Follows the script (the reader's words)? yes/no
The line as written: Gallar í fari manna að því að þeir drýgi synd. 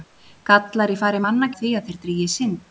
yes